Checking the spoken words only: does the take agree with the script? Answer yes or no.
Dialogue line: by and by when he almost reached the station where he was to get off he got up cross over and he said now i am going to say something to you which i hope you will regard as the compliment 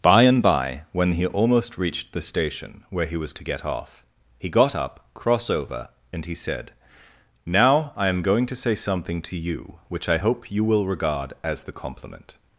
yes